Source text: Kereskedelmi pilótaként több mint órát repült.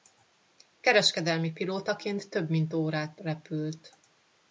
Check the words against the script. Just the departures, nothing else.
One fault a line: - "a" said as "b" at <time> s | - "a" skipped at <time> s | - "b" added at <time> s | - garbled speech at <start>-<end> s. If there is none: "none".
none